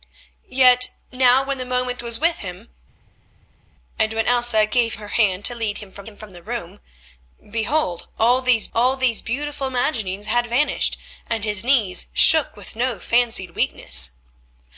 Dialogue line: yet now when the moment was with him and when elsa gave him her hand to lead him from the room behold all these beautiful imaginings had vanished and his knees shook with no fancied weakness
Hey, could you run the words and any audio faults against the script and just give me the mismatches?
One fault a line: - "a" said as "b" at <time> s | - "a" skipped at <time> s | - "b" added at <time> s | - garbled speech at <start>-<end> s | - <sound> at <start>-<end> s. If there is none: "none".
- "him" skipped at 4.9 s
- "him from" added at 6.0 s
- "all these" added at 8.7 s